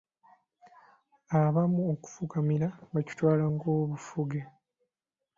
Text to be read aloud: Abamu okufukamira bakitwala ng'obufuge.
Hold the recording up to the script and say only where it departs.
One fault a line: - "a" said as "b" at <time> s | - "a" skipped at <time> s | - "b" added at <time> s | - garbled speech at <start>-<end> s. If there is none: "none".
none